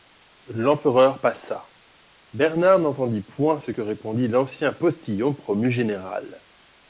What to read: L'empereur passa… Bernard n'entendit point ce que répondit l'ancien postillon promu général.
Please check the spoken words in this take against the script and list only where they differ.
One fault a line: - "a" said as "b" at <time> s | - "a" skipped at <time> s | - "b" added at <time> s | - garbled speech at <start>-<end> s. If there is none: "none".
none